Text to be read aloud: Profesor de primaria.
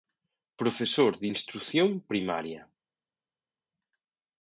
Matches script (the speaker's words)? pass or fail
fail